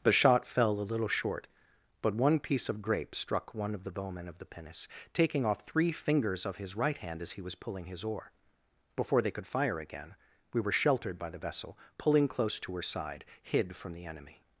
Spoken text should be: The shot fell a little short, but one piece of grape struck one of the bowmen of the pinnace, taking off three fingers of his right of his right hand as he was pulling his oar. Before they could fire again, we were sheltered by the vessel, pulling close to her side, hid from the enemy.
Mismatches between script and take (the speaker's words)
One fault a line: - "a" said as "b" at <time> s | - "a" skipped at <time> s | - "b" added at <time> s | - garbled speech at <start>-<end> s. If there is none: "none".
- "of his right" skipped at 7.0 s